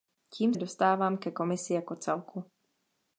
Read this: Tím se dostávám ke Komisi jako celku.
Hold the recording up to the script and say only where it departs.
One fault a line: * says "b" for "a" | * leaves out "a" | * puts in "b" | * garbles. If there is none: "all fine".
* leaves out "se"